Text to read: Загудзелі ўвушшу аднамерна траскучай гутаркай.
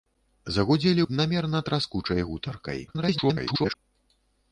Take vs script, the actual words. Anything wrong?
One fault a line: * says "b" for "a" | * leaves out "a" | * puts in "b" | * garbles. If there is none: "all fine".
* leaves out "ўвушшу"
* garbles